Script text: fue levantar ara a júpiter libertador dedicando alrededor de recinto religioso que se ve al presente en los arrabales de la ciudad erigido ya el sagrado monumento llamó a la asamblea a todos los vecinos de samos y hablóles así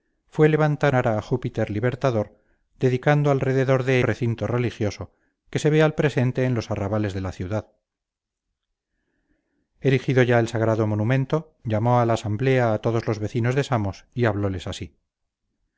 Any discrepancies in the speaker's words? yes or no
no